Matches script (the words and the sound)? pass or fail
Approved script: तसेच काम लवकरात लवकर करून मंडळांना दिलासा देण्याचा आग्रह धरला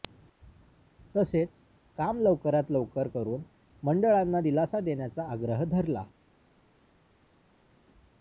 pass